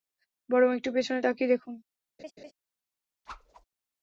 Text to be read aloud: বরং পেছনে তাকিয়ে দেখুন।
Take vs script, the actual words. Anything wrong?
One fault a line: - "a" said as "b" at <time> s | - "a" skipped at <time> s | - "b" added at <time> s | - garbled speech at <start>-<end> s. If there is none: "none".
- "একটু" added at 0.8 s